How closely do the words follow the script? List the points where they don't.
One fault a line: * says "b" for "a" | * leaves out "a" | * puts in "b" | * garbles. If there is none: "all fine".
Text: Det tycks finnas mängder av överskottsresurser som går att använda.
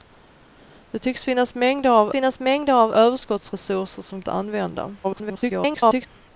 * puts in "finnas mängder av"
* leaves out "går"
* garbles